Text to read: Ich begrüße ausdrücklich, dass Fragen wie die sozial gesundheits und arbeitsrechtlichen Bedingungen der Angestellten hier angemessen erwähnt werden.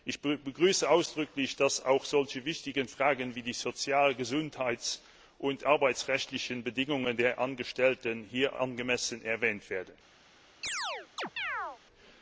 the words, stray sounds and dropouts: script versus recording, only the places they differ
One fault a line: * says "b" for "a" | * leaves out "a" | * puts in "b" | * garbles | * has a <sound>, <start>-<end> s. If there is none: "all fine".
* puts in "auch solche wichtigen"
* has a chirp, 10.6-11.8 s